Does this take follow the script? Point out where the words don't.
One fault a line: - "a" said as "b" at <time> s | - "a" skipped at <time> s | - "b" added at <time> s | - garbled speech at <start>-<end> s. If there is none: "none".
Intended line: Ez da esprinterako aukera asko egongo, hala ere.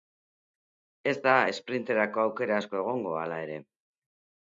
none